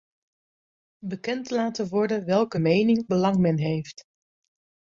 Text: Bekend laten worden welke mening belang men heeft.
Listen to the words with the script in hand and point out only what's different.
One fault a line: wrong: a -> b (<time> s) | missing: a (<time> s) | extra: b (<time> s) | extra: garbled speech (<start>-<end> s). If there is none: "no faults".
no faults